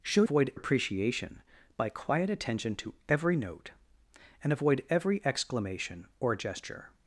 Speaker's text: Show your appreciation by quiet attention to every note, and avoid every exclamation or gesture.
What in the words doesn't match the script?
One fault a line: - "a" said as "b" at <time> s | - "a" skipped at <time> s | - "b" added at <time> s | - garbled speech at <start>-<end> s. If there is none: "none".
- "your" said as "avoid" at 0.2 s